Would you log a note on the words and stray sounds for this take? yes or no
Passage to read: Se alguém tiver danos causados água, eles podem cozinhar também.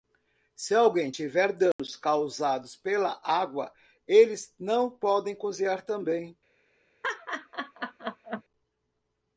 yes